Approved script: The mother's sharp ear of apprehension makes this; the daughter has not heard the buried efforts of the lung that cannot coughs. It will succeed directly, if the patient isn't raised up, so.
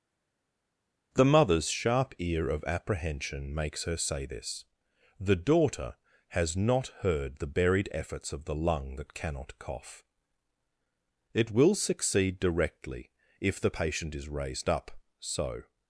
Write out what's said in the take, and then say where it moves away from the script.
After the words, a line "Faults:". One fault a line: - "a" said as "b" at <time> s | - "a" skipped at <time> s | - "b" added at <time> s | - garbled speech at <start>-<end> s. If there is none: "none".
The mother's sharp ear of apprehension makes her say this; the daughter has not heard the buried efforts of the lung that cannot cough. It will succeed directly, if the patient is raised up, so.
Faults:
- "her say" added at 3.8 s
- "coughs" said as "cough" at 9.6 s
- "isn't" said as "is" at 14.1 s